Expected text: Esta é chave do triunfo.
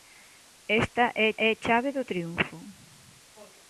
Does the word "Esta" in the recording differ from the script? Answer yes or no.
no